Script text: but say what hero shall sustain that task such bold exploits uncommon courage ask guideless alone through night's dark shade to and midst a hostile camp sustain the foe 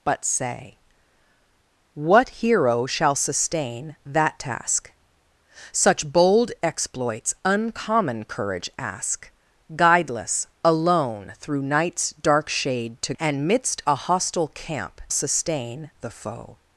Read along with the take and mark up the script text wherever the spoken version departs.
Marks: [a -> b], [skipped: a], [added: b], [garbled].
but say what hero shall sustain that task such bold exploits uncommon courage ask guideless alone through night's dark shade to and midst a hostile camp sustain the foe